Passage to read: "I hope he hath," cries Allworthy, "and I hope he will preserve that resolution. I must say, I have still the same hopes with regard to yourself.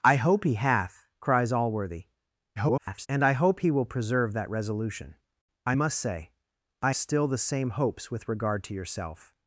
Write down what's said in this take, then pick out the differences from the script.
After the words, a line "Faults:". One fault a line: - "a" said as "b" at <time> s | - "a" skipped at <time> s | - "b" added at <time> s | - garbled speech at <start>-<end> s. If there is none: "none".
"I hope he hath," cries Allworthy, [garbled] "and I hope he will preserve that resolution. I must say, I still the same hopes with regard to yourself.
Faults:
- garbled speech at 2.6-3.1 s
- "have" skipped at 6.9 s